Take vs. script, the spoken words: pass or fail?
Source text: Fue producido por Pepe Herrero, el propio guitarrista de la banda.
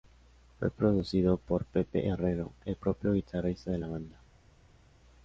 pass